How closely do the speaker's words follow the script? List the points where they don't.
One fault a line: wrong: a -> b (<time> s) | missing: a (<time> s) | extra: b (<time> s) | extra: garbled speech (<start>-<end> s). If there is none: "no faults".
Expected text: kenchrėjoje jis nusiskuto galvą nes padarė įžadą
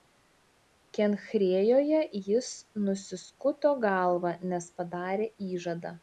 no faults